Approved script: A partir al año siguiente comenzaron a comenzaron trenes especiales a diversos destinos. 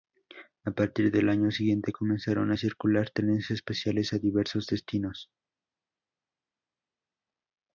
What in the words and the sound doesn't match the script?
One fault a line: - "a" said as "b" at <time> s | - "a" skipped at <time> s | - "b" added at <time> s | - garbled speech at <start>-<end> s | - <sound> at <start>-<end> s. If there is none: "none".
- "al" said as "del" at 1.1 s
- "comenzaron" said as "circular" at 2.5 s